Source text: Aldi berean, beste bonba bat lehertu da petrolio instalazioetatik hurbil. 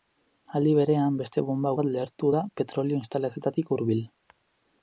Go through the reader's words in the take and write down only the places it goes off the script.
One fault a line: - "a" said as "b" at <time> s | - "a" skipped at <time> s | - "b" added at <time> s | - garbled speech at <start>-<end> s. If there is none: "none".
none